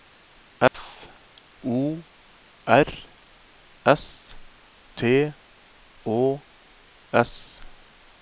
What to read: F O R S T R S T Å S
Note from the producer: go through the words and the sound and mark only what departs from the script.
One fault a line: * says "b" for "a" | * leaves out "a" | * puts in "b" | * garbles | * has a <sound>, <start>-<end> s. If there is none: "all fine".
* has a dropout, 0.7-0.7 s
* leaves out "R S T"